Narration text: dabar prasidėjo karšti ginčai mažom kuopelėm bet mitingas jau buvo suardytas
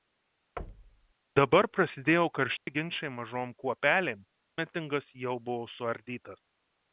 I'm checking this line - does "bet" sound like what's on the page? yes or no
no